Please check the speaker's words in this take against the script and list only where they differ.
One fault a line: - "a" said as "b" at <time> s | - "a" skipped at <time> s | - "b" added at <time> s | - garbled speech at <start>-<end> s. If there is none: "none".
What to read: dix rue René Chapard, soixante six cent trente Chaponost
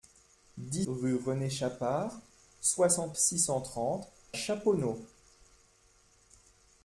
none